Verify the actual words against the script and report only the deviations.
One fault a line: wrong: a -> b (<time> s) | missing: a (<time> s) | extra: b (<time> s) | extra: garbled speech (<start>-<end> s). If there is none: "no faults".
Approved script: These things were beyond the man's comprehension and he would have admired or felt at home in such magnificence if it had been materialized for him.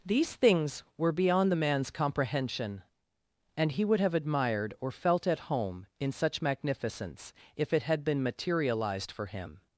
no faults